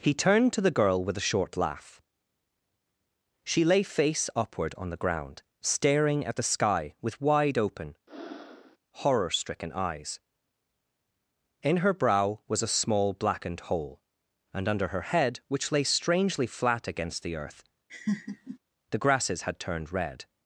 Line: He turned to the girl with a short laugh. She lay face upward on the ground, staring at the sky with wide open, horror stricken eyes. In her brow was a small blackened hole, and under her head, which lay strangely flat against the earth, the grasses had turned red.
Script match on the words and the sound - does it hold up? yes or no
no